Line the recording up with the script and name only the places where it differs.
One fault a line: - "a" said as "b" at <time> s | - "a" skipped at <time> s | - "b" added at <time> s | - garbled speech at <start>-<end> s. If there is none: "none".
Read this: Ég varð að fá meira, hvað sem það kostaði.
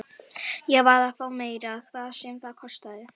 none